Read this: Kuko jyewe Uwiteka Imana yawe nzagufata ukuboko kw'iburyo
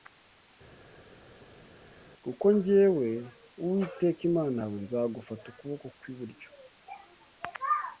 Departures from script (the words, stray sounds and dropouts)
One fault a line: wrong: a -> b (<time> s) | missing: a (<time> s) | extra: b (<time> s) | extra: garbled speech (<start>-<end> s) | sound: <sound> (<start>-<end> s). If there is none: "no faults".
no faults